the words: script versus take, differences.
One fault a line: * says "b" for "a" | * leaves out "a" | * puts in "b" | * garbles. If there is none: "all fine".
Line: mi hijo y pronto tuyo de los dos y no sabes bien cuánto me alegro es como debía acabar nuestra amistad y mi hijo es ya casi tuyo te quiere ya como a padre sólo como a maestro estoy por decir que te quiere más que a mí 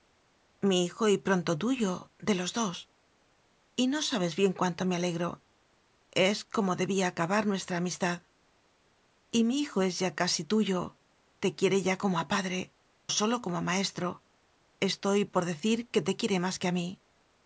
all fine